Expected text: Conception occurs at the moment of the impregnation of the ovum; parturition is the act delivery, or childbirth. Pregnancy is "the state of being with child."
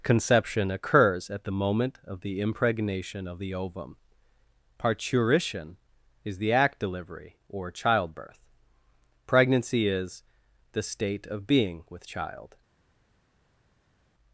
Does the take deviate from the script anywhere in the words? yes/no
no